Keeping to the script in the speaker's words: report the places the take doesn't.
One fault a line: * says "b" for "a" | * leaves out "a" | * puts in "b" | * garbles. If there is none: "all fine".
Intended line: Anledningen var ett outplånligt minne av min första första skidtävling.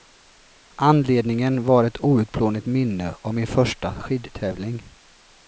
* leaves out "första"